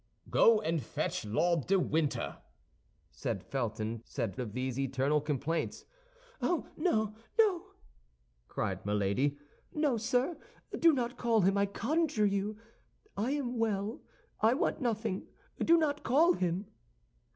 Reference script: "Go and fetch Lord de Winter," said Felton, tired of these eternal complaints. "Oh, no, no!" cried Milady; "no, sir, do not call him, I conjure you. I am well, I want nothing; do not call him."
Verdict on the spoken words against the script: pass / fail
fail